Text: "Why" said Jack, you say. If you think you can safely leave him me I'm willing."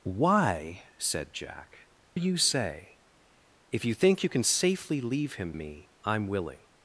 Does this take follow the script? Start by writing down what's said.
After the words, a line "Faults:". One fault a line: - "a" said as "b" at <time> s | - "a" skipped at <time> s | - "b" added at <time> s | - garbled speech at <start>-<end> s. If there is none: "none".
"Why" said Jack, you say. If you think you can safely leave him me I'm willing."
Faults:
none